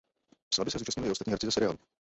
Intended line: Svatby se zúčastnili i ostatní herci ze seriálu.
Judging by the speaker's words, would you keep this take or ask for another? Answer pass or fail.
pass